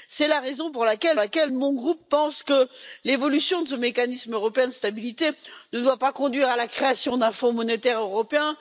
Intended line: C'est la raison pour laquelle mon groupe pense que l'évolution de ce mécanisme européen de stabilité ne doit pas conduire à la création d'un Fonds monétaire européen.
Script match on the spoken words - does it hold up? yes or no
no